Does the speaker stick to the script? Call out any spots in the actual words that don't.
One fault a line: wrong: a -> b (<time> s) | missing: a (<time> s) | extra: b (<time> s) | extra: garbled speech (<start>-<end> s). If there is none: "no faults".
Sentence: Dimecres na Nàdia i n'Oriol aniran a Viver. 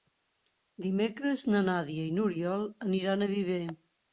no faults